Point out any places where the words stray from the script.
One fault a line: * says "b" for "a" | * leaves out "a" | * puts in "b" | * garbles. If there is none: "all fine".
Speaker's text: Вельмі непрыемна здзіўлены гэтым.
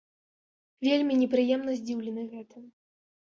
all fine